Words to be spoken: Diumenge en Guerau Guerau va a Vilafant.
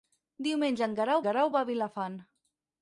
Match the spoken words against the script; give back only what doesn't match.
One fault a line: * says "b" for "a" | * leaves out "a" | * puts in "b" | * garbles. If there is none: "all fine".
all fine